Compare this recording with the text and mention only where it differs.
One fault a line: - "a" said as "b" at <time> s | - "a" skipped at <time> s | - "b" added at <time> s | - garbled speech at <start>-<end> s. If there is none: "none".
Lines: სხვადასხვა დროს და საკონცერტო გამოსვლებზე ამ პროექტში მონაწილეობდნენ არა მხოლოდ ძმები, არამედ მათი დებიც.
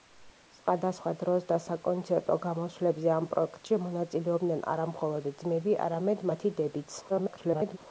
- garbled speech at 7.1-7.8 s